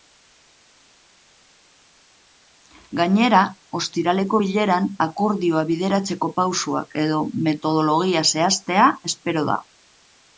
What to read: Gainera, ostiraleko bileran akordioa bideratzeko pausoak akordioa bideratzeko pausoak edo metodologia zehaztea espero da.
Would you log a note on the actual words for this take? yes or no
yes